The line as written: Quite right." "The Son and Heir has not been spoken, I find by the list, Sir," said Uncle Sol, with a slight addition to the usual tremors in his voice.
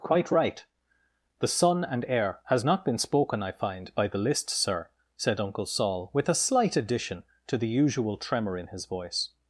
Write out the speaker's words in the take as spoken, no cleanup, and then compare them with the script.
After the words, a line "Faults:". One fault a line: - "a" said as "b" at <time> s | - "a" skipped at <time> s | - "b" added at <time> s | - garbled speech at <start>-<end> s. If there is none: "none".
Quite right." "The Son and Heir has not been spoken, I find by the list, Sir," said Uncle Sol, with a slight addition to the usual tremor in his voice.
Faults:
- "tremors" said as "tremor" at 8.2 s